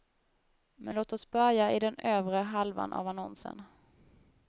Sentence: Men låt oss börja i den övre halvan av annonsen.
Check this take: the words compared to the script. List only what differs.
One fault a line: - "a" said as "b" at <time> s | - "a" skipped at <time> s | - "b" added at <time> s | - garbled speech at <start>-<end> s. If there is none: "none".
none